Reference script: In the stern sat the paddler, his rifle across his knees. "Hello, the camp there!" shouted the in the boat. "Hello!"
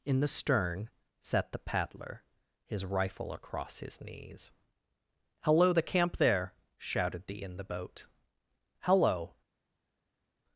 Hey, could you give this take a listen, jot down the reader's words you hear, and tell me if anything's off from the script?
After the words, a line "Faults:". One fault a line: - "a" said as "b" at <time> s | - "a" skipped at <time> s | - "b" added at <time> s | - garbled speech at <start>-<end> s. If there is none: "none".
In the stern sat the paddler, his rifle across his knees. "Hello, the camp there!" shouted the in the boat. "Hello!"
Faults:
none